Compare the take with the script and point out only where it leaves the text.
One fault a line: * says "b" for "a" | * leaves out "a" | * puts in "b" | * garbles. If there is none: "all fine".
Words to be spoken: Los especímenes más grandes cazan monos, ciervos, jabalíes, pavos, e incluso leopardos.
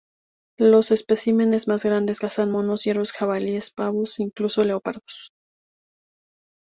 all fine